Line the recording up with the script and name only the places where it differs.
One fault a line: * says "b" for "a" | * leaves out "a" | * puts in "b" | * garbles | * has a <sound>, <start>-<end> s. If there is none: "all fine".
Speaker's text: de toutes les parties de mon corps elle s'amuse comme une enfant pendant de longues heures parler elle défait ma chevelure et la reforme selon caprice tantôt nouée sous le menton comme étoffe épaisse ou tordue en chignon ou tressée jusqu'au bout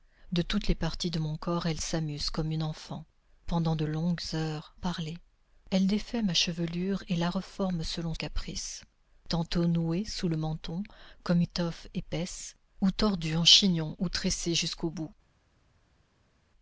all fine